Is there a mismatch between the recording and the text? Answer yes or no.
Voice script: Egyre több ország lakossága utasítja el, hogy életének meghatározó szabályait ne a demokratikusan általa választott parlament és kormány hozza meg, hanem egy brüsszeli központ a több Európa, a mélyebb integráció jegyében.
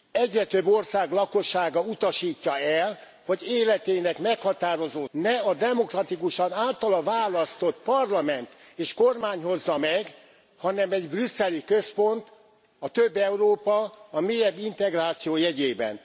yes